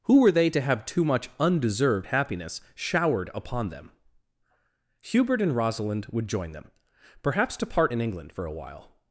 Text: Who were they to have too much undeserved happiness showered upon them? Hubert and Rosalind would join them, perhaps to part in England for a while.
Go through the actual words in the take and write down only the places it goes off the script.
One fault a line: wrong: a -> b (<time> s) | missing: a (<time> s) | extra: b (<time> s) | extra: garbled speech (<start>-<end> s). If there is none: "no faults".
no faults